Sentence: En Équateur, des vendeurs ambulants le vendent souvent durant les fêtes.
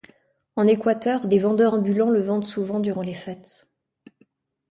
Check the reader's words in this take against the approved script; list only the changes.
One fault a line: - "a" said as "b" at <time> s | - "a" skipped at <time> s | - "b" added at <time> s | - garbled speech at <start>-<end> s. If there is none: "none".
none